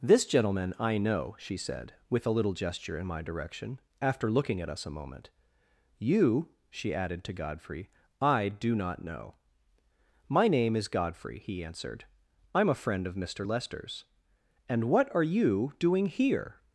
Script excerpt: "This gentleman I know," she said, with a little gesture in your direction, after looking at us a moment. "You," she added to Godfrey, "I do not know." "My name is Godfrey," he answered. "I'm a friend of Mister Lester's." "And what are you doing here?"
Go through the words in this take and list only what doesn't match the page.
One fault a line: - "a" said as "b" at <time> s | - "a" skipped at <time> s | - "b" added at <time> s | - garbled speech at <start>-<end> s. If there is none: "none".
- "your" said as "my" at 3.1 s